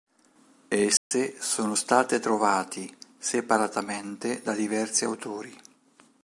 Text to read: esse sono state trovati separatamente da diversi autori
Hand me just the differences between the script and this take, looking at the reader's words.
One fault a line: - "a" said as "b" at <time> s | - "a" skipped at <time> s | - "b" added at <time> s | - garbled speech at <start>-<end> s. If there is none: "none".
none